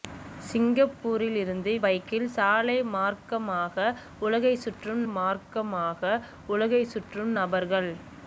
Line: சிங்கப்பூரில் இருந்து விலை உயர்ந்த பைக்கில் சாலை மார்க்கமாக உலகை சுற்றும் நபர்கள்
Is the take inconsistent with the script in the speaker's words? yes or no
yes